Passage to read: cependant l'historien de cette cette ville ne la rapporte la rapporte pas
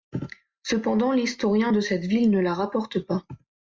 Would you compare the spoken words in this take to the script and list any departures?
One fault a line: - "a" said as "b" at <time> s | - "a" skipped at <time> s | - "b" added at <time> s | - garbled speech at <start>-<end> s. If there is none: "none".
- "cette" skipped at 2.1 s
- "la rapporte" skipped at 3.0 s